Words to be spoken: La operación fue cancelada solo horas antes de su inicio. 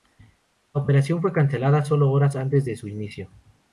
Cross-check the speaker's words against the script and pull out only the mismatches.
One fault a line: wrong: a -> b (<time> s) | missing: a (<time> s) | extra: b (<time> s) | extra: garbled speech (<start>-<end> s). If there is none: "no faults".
no faults